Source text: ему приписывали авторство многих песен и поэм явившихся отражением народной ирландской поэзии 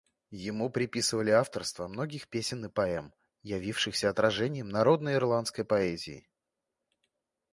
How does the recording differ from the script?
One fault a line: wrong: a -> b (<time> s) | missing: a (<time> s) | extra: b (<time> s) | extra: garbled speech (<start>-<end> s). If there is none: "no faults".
no faults